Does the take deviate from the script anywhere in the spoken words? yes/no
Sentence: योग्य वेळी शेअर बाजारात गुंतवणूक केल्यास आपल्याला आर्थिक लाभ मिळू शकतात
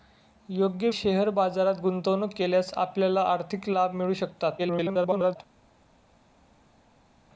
yes